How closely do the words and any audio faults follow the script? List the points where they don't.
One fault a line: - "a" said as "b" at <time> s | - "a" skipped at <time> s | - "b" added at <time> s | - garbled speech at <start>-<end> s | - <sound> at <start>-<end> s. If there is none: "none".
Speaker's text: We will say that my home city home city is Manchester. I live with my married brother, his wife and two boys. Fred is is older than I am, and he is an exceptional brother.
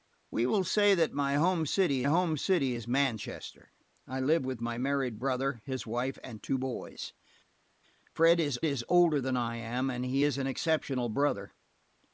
none